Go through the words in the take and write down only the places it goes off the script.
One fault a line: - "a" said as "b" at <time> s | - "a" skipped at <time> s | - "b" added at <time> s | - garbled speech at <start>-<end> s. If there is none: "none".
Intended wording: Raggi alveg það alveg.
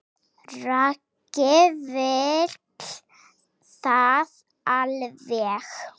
- "alveg" said as "vill" at 1.9 s